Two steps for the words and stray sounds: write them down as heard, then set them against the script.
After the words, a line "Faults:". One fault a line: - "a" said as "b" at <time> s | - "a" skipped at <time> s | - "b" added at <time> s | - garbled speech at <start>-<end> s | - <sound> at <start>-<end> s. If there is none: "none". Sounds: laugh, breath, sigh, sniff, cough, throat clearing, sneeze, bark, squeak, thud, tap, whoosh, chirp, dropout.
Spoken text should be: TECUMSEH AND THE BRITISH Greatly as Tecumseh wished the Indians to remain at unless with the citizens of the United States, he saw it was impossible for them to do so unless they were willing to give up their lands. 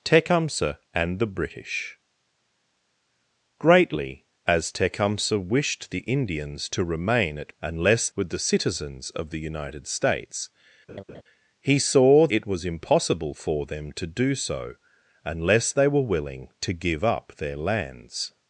TECUMSEH AND THE BRITISH Greatly as Tecumseh wished the Indians to remain at unless with the citizens of the United States, he saw it was impossible for them to do so unless they were willing to give up their lands.
Faults:
- laugh at 10.9-11.2 s